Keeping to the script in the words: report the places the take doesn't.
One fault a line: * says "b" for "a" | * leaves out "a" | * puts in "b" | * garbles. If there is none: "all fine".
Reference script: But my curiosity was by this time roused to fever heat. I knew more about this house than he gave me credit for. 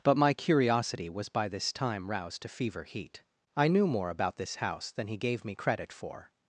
all fine